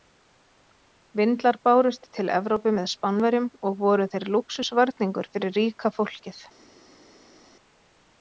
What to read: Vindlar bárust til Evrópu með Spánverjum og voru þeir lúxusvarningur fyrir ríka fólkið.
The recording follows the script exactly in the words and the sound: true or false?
true